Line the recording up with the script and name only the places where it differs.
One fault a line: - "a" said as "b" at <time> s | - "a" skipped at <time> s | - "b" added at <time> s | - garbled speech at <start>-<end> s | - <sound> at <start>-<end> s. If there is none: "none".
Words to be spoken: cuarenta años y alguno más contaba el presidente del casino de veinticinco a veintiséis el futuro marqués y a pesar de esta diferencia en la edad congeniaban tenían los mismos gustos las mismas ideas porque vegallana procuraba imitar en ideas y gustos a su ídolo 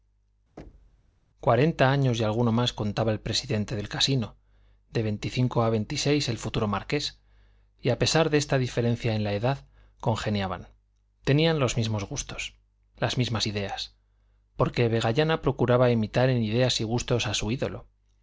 - thud at 0.6-1.2 s